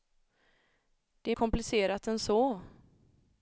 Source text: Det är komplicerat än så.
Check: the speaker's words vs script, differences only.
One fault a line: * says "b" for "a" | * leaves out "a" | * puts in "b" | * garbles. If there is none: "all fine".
all fine